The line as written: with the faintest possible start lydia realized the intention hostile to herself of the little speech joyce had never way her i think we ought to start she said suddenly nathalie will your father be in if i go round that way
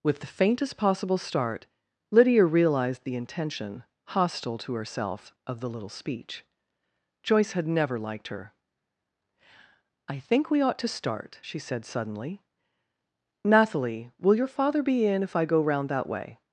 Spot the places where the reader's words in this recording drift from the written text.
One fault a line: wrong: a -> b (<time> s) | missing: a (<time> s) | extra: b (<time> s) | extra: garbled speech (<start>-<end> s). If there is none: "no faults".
wrong: way -> liked (8.0 s)